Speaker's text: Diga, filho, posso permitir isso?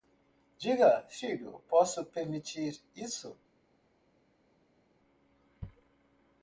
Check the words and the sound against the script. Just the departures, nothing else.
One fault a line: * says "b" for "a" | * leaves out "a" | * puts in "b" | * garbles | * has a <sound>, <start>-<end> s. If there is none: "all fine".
all fine